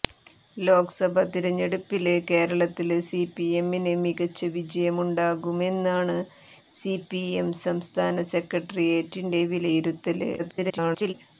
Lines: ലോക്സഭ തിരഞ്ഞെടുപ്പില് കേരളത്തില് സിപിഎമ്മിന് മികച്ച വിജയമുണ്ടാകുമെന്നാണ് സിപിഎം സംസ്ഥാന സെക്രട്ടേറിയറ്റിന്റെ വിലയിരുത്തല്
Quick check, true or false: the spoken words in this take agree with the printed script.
false